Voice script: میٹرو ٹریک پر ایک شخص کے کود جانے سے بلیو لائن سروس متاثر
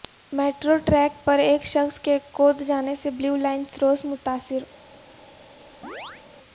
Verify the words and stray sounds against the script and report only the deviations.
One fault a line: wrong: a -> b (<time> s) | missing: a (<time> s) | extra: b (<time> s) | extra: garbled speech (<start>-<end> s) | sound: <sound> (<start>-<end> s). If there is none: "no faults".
sound: chirp (5.8-6.2 s)